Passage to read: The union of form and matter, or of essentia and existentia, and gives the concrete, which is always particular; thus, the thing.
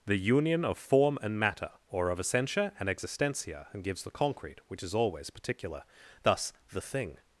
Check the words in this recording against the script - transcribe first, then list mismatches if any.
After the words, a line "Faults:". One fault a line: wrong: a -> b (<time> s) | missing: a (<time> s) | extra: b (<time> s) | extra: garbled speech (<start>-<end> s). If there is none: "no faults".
The union of form and matter, or of essentia and existentia, and gives the concrete, which is always particular; thus, the thing.
Faults:
no faults